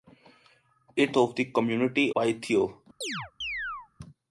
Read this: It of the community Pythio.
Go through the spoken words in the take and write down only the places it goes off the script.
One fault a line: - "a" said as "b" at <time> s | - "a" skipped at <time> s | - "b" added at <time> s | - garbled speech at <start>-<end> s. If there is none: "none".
none